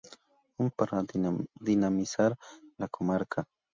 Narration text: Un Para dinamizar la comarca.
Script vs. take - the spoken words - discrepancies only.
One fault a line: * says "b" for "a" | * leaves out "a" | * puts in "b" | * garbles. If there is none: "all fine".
all fine